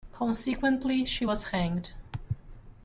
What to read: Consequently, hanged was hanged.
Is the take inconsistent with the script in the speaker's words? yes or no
yes